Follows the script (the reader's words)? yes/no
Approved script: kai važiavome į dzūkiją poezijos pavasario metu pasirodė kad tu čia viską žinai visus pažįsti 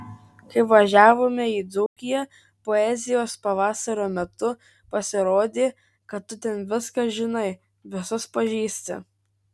no